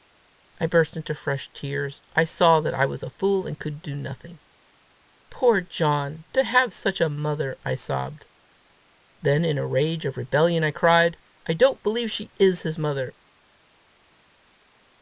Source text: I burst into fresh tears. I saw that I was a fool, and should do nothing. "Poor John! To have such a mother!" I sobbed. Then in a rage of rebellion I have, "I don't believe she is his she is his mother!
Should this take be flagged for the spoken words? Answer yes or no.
yes